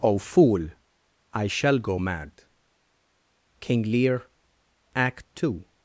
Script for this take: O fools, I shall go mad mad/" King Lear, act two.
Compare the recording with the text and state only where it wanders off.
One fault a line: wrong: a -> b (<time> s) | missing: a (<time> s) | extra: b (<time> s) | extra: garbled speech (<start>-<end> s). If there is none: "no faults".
wrong: fools -> fool (0.2 s)
missing: mad (2.4 s)